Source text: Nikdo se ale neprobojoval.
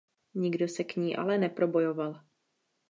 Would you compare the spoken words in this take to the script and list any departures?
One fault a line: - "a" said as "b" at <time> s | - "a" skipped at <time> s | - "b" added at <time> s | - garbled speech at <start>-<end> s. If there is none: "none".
- "k ní" added at 0.8 s